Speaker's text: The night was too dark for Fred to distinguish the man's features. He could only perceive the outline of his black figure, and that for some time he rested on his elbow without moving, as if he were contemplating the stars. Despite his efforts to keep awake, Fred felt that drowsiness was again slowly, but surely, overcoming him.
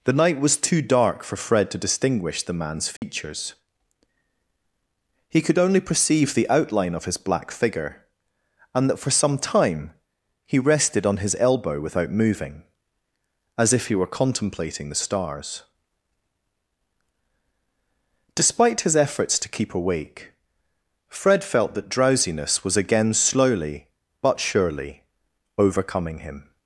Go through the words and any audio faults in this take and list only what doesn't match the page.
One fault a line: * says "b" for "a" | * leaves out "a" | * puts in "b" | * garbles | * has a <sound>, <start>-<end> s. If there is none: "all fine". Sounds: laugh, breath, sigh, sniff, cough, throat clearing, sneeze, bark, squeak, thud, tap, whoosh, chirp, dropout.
* has a dropout, 3.0-3.0 s